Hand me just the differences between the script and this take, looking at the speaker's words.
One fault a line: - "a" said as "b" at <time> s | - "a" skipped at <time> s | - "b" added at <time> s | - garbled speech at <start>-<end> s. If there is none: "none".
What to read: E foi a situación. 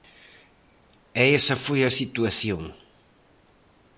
- "esa" added at 1.4 s